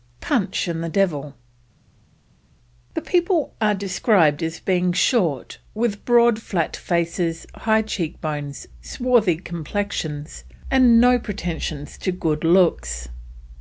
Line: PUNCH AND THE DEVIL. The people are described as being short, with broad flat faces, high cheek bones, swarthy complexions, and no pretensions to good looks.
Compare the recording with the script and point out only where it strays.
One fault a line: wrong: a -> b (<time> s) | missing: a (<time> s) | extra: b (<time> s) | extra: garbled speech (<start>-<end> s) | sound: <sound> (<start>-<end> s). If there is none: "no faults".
no faults